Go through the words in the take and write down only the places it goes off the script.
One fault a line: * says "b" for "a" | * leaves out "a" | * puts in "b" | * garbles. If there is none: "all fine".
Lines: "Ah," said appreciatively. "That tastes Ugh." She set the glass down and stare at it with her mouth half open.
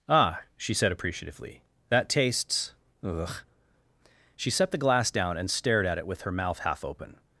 * puts in "she"
* says "stared" for "stare"